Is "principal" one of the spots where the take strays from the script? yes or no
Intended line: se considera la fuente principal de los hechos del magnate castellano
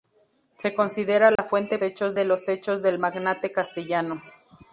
yes